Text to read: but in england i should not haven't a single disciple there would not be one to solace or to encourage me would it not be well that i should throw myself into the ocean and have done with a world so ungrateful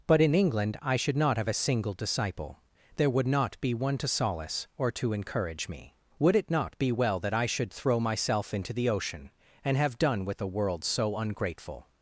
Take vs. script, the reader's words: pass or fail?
fail